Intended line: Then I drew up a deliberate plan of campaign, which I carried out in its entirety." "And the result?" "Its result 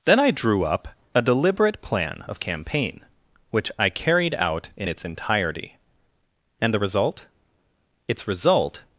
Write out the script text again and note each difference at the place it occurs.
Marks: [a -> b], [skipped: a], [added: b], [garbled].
Then I drew up a deliberate plan of campaign, which I carried out in its entirety." "And the result?" "Its result